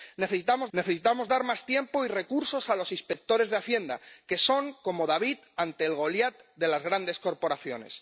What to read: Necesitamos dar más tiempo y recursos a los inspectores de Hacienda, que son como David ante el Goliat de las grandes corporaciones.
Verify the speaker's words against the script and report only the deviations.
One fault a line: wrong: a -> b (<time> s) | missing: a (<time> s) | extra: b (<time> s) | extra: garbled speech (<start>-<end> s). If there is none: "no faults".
extra: necesitamos (0.7 s)